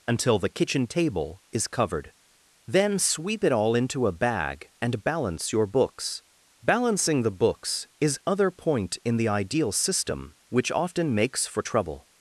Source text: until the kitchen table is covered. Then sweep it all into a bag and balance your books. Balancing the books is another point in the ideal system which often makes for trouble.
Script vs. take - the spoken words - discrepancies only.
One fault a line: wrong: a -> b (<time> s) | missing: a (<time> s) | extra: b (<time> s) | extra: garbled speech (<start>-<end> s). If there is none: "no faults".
wrong: another -> other (8.3 s)